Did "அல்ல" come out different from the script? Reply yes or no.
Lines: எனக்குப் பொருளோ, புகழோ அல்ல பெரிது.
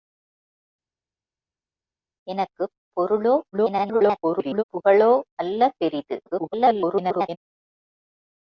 no